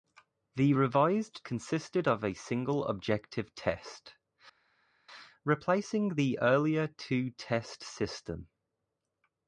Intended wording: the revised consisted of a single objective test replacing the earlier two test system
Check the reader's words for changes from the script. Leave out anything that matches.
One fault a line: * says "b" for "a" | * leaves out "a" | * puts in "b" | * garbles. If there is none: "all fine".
all fine